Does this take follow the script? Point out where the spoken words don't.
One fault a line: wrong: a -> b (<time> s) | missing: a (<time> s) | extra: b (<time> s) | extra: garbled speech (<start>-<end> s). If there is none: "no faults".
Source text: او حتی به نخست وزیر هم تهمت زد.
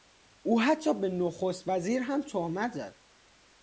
no faults